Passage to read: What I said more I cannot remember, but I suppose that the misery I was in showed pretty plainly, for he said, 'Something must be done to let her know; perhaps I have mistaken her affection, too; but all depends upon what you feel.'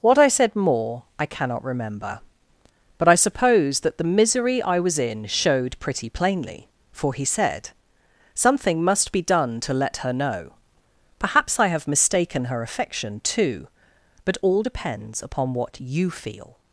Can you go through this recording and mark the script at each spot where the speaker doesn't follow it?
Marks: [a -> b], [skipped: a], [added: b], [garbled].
What I said more I cannot remember, but I suppose that the misery I was in showed pretty plainly, for he said, 'Something must be done to let her know; perhaps I have mistaken her affection, too; but all depends upon what you feel.'